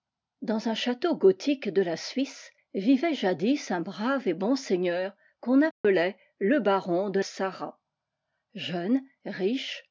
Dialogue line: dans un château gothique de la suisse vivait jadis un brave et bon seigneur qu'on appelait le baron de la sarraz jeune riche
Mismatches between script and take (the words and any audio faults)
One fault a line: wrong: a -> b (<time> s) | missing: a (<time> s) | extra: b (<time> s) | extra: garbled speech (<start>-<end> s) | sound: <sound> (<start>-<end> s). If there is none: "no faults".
sound: dropout (5.7-5.8 s)
missing: la (7.2 s)